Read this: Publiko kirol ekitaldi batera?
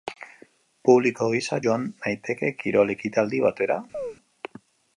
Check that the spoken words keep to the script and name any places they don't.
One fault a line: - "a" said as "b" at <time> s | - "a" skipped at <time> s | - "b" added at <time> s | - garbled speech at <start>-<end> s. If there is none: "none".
- "gisa joan naiteke" added at 1.4 s